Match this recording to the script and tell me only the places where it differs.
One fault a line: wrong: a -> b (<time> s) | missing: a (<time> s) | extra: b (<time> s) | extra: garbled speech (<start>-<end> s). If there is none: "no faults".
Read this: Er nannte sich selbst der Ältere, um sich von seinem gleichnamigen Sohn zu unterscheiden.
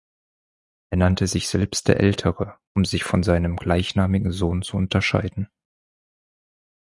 no faults